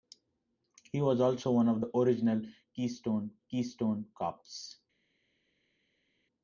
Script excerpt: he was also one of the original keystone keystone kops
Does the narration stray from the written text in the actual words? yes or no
no